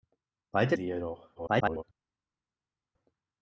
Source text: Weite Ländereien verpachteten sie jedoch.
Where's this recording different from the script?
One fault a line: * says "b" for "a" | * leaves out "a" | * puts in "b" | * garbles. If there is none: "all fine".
* leaves out "Ländereien verpachteten"
* garbles